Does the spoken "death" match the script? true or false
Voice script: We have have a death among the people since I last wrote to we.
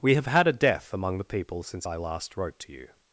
true